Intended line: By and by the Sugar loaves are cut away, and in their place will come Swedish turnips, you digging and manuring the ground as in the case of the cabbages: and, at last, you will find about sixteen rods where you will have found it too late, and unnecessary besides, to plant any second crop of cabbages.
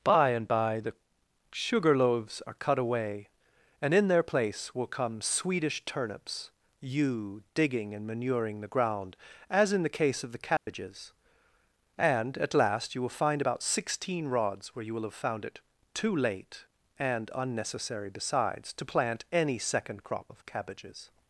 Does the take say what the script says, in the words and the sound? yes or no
no